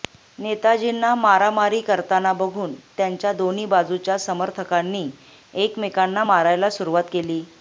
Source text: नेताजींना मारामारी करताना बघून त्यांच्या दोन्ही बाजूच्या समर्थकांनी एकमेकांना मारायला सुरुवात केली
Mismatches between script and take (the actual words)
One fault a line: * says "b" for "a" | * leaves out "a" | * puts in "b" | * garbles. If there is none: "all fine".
all fine